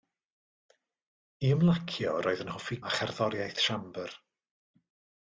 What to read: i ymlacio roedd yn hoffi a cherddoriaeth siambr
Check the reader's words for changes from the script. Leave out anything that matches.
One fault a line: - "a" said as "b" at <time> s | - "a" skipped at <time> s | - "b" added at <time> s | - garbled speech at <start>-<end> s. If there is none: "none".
none